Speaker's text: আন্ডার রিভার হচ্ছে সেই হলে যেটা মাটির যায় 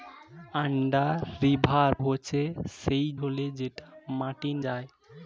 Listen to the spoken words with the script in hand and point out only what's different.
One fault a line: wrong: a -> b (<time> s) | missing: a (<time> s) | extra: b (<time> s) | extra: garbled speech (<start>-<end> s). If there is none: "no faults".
no faults